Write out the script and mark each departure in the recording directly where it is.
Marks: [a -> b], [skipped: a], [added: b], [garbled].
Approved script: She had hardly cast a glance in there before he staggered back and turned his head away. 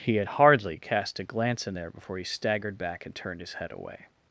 [She -> He] had hardly cast a glance in there before he staggered back and turned his head away.